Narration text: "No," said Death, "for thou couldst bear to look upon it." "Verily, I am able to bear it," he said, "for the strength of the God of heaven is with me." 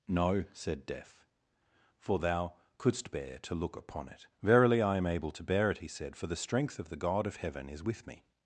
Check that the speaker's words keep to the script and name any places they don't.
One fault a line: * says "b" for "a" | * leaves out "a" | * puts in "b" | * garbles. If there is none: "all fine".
all fine